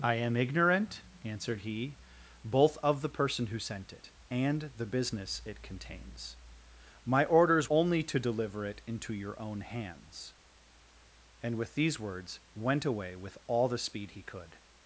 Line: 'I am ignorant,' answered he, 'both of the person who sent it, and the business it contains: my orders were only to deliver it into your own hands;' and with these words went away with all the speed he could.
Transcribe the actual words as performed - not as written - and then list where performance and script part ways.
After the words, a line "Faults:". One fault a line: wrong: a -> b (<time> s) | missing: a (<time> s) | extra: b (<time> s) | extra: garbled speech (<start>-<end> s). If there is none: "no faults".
'I am ignorant,' answered he, 'both of the person who sent it, and the business it contains: my orders only to deliver it into your own hands;' and with these words went away with all the speed he could.
Faults:
missing: were (7.7 s)